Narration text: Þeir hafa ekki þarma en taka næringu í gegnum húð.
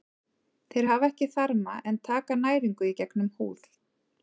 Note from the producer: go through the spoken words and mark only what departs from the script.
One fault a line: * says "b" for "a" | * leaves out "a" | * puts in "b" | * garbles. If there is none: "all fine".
all fine